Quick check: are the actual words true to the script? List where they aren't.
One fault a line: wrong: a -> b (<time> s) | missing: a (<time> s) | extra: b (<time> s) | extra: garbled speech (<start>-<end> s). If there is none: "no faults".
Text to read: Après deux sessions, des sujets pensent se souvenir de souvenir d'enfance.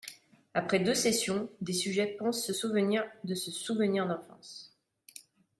extra: ce (3.3 s)